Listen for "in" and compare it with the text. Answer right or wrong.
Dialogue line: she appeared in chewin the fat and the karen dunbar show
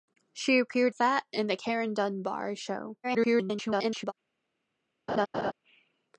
wrong